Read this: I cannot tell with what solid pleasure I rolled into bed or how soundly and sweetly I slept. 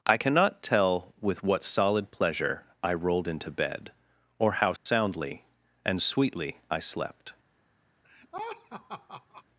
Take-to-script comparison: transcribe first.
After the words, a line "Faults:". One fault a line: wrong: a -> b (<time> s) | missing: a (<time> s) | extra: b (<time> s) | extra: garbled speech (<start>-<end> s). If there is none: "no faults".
I cannot tell with what solid pleasure I rolled into bed or how soundly and sweetly I slept.
Faults:
no faults